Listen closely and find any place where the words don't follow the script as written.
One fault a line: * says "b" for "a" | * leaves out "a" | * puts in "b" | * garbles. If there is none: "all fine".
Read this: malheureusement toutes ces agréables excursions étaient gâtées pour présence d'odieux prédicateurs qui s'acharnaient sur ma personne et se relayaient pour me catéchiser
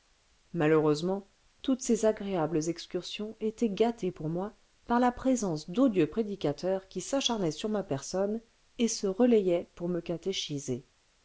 * puts in "moi par la"